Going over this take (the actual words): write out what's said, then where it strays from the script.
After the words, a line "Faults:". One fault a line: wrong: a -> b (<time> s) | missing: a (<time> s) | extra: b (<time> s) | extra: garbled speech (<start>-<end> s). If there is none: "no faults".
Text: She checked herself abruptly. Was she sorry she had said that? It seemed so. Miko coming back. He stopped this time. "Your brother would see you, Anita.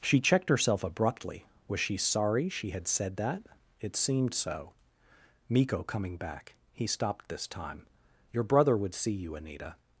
She checked herself abruptly. Was she sorry she had said that? It seemed so. Miko coming back. He stopped this time. "Your brother would see you, Anita.
Faults:
no faults